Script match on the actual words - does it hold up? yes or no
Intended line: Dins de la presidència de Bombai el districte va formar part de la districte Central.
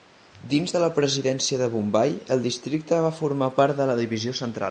no